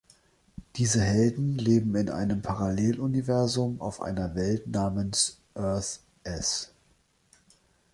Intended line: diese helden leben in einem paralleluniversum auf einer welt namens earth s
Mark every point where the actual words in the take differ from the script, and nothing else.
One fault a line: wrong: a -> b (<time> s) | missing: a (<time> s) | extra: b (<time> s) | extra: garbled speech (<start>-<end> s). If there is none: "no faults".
no faults